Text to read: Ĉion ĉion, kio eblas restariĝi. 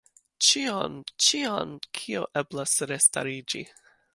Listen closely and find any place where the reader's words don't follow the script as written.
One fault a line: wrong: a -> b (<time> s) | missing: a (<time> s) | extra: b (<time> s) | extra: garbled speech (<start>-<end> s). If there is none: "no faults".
no faults